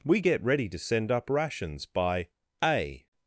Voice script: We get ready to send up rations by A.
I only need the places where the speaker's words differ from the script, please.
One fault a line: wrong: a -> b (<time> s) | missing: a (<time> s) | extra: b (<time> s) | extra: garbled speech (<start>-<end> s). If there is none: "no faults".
no faults